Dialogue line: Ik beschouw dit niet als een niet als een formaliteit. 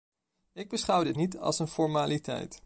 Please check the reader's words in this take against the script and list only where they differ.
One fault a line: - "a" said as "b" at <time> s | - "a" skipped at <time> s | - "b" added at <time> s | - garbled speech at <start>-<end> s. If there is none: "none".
- "niet als een" skipped at 1.7 s